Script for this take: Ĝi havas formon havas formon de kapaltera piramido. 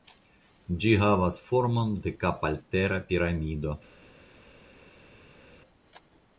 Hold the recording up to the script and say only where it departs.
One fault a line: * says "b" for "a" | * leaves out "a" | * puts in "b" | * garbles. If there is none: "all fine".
* leaves out "havas formon"